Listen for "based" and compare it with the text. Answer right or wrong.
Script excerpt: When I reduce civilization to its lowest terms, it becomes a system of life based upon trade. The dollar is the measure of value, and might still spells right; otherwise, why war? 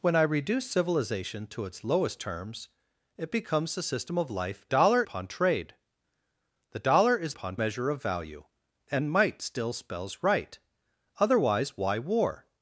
wrong